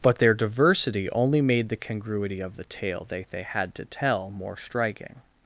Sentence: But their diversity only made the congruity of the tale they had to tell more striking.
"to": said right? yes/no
yes